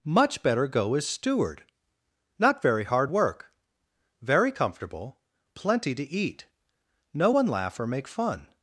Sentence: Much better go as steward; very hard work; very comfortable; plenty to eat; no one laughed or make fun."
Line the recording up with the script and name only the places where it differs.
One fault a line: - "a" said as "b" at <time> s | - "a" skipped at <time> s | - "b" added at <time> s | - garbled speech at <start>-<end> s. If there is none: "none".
- "not" added at 2.4 s
- "laughed" said as "laugh" at 7.5 s